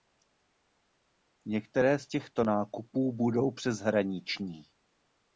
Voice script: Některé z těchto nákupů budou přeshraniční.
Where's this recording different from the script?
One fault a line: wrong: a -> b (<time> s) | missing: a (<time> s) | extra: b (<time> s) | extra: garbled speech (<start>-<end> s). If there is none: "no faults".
no faults